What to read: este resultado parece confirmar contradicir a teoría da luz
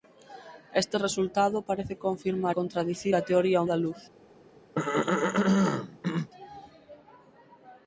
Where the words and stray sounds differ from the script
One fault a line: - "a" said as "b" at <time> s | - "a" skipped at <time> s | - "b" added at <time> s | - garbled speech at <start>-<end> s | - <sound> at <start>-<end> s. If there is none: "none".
- throat clearing at 4.7-6.3 s